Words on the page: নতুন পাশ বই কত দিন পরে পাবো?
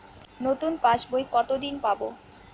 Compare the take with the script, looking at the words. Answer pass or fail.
fail